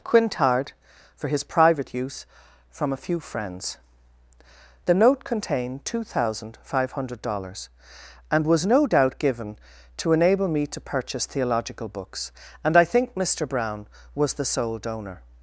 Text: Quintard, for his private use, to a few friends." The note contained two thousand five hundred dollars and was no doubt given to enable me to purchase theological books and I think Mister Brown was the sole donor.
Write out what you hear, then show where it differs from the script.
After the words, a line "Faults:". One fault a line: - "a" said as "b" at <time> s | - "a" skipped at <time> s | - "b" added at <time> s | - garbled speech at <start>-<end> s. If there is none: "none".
Quintard, for his private use, from a few friends." The note contained two thousand five hundred dollars and was no doubt given to enable me to purchase theological books and I think Mister Brown was the sole donor.
Faults:
- "to" said as "from" at 2.7 s